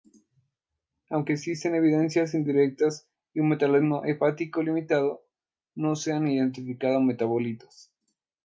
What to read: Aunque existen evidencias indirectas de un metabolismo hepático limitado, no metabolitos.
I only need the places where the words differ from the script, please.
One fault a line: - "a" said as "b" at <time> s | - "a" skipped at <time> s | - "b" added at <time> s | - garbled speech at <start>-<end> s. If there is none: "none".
- "se han identificado" added at 6.0 s